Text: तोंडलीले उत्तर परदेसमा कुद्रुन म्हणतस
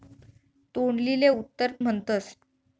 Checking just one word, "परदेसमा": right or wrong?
wrong